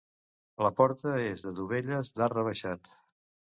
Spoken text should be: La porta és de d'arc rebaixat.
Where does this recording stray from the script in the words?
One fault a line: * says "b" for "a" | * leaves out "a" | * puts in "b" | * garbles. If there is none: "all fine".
* puts in "dovelles"